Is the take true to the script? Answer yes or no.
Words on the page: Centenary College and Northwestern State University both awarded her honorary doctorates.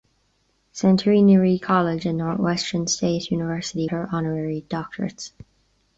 no